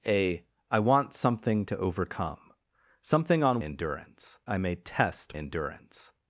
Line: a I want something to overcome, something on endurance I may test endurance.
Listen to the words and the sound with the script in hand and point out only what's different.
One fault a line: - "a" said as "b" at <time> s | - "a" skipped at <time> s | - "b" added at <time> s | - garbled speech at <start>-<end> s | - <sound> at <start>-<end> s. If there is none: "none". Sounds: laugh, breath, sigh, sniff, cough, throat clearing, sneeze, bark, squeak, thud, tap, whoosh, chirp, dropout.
none